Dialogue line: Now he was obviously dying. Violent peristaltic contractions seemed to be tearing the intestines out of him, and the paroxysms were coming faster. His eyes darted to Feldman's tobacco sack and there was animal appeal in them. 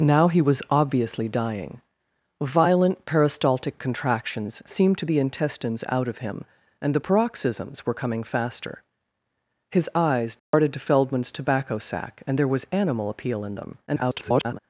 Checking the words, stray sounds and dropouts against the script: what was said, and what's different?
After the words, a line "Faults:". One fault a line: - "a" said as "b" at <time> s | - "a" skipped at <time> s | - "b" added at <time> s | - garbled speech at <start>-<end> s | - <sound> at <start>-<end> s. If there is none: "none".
Now he was obviously dying. Violent peristaltic contractions seemed to the intestines out of him, and the paroxysms were coming faster. His eyes darted to Feldman's tobacco sack and there was animal appeal in them. [garbled]
Faults:
- "be tearing" skipped at 5.0 s
- dropout at 10.4-10.5 s
- garbled speech at 13.9-14.6 s